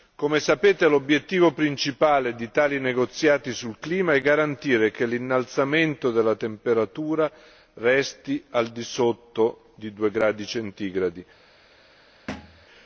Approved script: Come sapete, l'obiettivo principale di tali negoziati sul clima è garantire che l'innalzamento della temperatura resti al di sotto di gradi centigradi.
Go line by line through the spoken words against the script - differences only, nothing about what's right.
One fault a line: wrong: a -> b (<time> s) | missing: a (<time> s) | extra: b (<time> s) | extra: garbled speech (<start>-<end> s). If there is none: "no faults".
extra: due (9.9 s)